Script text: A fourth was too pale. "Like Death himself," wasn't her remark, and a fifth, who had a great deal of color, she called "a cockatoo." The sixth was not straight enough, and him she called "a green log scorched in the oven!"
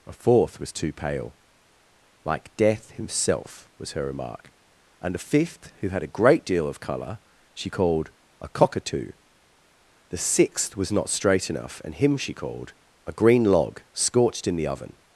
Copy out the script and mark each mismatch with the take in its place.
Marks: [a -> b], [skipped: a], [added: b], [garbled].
A fourth was too pale. "Like Death himself," [wasn't -> was] her remark, and a fifth, who had a great deal of color, she called "a cockatoo." The sixth was not straight enough, and him she called "a green log scorched in the oven!"